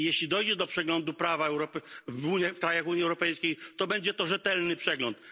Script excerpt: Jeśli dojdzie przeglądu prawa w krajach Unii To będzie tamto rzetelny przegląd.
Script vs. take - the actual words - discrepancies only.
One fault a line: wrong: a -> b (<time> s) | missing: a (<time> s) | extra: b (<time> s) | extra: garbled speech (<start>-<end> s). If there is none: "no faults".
extra: do (0.6 s)
extra: Europejskiej (3.0 s)
wrong: tamto -> to (4.1 s)